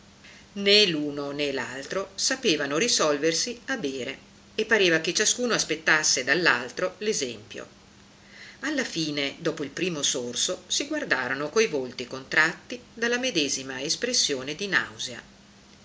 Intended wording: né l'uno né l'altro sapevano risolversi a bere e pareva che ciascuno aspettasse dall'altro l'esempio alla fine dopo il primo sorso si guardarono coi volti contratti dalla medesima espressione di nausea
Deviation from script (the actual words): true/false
false